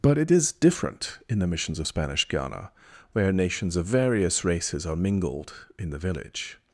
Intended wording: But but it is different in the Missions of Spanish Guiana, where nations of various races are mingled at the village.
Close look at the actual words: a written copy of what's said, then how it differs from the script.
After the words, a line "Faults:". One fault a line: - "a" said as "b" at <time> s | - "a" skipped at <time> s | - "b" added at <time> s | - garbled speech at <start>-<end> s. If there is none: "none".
But it is different in the Missions of Spanish Guiana, where nations of various races are mingled in the village.
Faults:
- "but" skipped at 0.2 s
- "at" said as "in" at 5.8 s